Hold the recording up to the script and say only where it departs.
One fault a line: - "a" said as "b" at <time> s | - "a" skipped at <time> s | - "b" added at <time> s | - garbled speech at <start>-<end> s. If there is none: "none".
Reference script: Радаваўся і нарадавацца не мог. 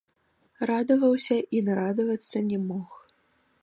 none